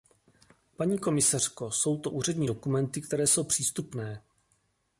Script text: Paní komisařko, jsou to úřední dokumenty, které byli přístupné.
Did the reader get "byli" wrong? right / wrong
wrong